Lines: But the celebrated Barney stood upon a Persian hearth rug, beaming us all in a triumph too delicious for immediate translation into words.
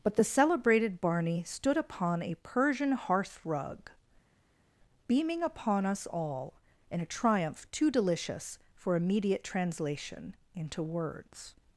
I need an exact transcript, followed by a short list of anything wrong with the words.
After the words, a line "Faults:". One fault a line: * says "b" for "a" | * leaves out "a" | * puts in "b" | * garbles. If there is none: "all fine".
But the celebrated Barney stood upon a Persian hearth rug, beaming upon us all in a triumph too delicious for immediate translation into words.
Faults:
* puts in "upon"